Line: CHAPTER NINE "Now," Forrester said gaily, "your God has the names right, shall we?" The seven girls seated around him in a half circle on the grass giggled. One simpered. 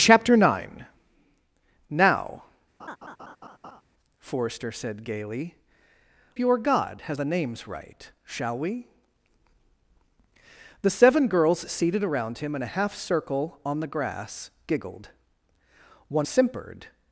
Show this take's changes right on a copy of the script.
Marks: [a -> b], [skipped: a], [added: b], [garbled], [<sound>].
CHAPTER NINE "Now," [laugh] Forrester said gaily, "your God has the names right, shall we?" The seven girls seated around him in a half circle on the grass giggled. One simpered.